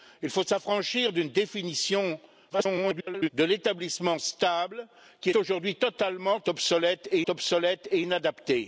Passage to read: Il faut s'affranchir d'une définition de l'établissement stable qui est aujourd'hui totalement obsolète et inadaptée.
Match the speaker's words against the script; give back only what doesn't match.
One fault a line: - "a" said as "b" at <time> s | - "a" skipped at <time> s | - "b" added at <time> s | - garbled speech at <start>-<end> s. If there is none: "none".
- garbled speech at 2.5-3.3 s
- "est" skipped at 5.3 s
- "obsolète et" added at 7.3 s